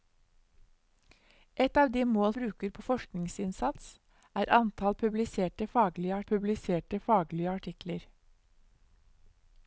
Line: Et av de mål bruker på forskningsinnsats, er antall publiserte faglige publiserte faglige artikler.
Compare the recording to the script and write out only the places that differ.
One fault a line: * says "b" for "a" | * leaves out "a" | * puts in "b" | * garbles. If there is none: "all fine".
all fine